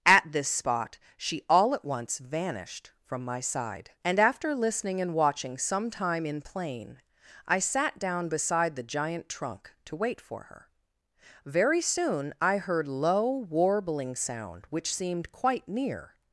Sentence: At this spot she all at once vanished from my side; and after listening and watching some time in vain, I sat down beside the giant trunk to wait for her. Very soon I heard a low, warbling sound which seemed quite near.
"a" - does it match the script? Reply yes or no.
no